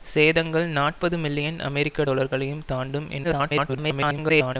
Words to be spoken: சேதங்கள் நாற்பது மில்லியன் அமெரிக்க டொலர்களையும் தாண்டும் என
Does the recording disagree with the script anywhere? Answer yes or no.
yes